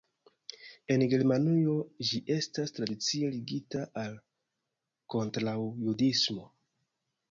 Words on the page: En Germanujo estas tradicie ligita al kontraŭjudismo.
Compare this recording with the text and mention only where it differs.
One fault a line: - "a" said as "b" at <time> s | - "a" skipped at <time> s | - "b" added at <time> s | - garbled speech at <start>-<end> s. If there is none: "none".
- "ĝi" added at 2.1 s